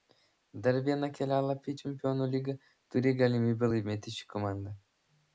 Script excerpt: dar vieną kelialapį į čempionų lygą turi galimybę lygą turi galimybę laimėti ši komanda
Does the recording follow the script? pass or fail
fail